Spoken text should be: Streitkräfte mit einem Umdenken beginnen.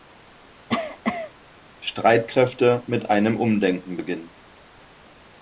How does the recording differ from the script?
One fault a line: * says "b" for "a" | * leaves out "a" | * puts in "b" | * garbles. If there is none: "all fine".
all fine